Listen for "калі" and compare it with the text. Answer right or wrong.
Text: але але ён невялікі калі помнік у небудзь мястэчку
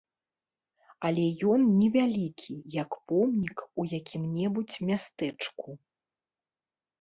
wrong